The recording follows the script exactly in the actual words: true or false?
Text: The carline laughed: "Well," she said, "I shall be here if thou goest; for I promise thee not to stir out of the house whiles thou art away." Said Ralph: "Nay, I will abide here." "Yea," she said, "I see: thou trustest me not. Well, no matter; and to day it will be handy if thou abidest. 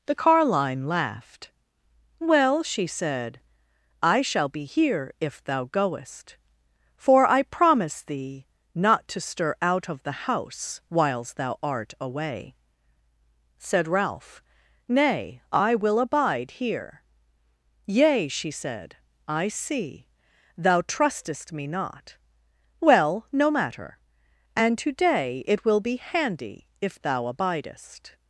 true